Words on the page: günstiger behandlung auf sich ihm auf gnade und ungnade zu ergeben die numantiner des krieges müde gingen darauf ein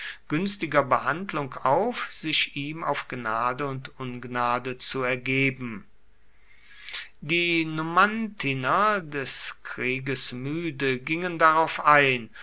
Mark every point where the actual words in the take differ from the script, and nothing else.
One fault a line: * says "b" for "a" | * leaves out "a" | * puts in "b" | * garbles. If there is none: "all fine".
all fine